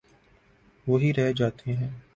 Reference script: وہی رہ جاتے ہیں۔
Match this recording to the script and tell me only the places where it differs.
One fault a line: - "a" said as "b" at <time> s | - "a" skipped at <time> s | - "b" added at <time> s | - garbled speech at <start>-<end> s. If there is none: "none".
none